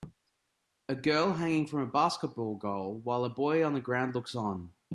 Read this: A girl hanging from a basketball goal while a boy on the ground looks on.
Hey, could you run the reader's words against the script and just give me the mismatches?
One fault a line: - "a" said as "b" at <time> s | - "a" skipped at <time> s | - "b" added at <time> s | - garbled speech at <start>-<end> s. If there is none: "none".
none